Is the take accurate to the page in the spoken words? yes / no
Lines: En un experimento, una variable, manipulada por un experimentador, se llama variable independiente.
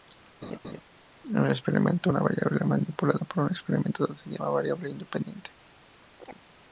yes